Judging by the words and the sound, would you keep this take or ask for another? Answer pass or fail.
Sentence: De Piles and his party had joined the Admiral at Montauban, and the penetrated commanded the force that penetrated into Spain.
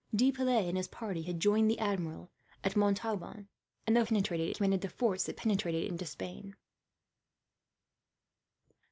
pass